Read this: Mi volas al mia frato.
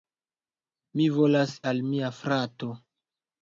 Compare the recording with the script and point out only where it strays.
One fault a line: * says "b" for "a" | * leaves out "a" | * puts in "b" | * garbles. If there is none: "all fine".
all fine